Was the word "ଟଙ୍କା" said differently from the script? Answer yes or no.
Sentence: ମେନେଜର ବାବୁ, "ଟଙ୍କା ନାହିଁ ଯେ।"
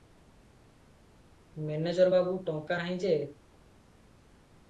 no